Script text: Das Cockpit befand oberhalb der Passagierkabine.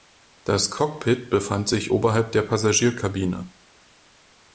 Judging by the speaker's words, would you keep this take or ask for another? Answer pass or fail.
fail